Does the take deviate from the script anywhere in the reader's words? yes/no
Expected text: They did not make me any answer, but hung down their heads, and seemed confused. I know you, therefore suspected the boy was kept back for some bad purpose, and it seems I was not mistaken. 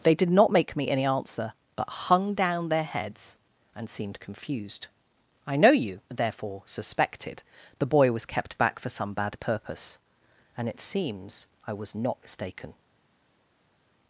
no